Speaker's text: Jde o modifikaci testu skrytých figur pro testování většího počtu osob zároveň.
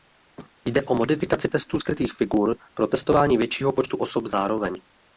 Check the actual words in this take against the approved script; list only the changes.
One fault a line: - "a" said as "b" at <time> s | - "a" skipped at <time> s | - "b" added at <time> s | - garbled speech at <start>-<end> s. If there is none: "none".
none